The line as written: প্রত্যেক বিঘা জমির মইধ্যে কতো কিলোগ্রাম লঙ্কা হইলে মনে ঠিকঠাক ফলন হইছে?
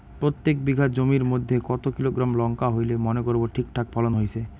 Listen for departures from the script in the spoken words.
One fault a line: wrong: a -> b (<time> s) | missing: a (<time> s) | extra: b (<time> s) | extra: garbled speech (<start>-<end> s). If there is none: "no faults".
extra: করব (3.2 s)